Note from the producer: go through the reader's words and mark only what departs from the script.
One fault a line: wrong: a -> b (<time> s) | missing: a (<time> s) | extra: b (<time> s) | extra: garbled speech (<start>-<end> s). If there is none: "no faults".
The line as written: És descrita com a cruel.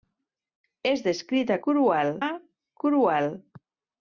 wrong: com -> cruel (1.7 s)